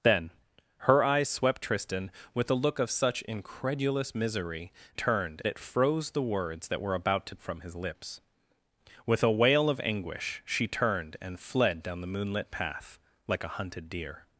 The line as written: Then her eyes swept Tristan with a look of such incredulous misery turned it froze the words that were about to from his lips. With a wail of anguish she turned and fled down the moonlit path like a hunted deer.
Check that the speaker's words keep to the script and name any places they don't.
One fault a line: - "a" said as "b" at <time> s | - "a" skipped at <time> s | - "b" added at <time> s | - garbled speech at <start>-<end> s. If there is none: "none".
none